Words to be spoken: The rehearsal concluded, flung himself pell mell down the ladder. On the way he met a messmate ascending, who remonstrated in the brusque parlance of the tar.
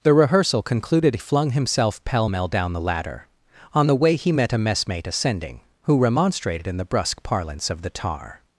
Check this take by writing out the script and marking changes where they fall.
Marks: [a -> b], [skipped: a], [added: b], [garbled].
The rehearsal concluded, flung himself pell mell down the ladder. On the way he met a messmate ascending, who remonstrated in the brusque parlance of the tar.